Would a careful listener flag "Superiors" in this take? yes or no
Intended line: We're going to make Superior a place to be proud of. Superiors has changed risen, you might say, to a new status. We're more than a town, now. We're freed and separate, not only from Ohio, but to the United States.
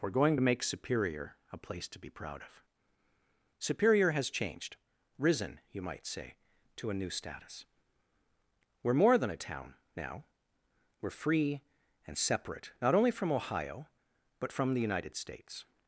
yes